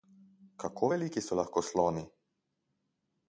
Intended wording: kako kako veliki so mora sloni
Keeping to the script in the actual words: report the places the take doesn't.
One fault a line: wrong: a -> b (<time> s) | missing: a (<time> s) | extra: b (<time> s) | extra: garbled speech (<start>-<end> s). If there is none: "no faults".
missing: kako (0.9 s)
wrong: mora -> lahko (1.4 s)